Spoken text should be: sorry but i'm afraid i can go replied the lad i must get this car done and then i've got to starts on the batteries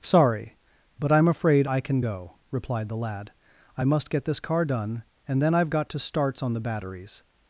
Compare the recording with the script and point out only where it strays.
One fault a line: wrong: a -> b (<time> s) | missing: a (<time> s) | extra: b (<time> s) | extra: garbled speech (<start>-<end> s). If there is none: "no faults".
no faults